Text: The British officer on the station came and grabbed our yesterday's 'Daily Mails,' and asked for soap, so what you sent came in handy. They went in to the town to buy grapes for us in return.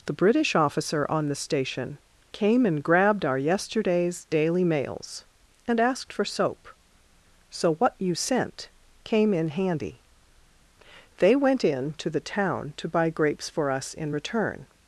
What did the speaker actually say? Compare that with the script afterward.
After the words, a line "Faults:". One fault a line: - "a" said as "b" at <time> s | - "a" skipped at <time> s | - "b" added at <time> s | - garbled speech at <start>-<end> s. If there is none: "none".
The British officer on the station came and grabbed our yesterday's 'Daily Mails,' and asked for soap, so what you sent came in handy. They went in to the town to buy grapes for us in return.
Faults:
none